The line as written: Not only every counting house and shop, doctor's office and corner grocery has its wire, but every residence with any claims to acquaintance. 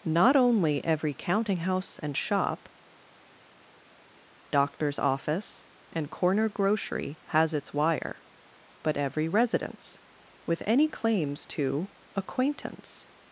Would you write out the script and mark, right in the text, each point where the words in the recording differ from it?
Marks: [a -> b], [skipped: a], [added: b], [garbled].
Not only every counting house and shop, doctor's office and corner grocery has its wire, but every residence with any claims to acquaintance.